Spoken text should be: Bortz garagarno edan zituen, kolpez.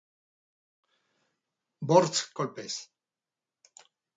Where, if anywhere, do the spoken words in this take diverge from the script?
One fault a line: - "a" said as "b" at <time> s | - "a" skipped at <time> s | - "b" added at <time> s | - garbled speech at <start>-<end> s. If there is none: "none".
- "garagarno edan zituen" skipped at 2.2 s